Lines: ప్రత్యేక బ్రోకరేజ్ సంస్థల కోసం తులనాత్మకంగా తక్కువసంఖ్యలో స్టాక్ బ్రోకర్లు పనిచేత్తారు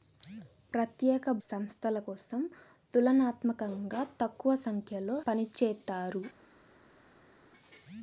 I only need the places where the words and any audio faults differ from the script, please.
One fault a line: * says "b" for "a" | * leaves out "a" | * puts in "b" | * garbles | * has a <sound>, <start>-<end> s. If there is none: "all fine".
* leaves out "బ్రోకరేజ్"
* leaves out "స్టాక్ బ్రోకర్లు"